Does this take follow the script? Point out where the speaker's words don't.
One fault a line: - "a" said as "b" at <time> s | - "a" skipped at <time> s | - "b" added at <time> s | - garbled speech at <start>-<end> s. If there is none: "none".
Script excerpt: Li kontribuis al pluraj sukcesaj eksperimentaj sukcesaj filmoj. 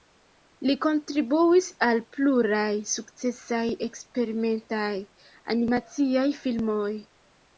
- "sukcesaj" said as "animaciaj" at 5.5 s